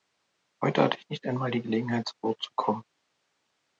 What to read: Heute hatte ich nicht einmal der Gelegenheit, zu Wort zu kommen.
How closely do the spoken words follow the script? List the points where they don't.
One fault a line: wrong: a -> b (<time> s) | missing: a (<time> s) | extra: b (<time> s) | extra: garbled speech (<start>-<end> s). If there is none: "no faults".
wrong: der -> die (1.5 s)